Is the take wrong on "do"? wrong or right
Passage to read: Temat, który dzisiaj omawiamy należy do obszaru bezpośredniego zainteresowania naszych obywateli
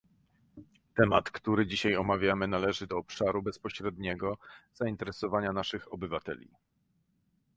right